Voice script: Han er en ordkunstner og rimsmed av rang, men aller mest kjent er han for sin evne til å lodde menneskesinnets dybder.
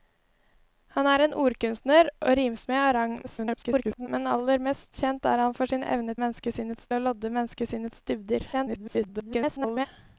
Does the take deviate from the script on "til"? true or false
true